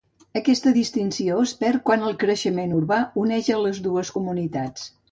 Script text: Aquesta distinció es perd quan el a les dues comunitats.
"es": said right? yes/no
yes